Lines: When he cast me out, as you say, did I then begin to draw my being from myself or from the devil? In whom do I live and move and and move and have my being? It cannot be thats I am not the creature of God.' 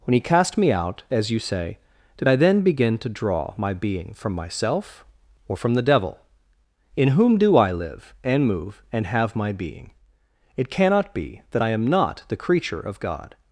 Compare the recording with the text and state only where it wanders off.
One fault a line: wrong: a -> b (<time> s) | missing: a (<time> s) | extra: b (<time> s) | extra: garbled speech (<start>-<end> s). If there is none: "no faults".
missing: and move and (9.1 s)
wrong: thats -> that (11.5 s)